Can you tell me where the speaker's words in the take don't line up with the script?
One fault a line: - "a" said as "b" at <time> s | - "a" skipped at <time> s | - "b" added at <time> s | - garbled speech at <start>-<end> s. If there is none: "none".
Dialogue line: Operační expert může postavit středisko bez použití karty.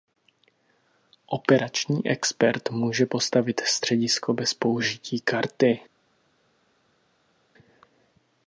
none